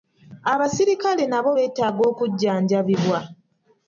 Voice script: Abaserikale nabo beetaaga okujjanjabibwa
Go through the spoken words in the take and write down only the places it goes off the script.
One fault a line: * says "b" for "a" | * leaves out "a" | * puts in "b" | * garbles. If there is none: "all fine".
all fine